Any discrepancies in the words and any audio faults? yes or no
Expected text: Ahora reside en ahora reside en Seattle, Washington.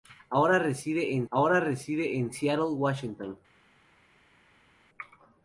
no